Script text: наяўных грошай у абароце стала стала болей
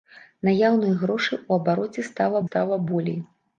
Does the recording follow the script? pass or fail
pass